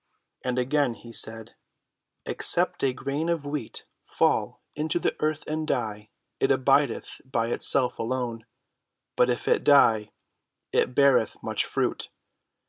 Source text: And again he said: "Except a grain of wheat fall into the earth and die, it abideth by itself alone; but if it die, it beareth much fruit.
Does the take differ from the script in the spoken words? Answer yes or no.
no